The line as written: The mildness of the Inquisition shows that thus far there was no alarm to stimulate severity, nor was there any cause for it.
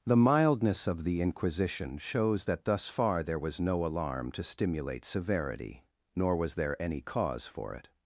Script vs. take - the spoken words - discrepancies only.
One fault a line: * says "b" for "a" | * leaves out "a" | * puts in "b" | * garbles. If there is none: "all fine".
all fine